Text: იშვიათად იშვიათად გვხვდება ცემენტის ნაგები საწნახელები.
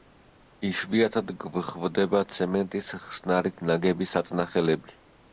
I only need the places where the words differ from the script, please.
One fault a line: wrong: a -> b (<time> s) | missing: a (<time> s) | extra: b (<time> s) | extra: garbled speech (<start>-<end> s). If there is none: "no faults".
missing: იშვიათად (1.3 s)
extra: ხსნარით (3.0 s)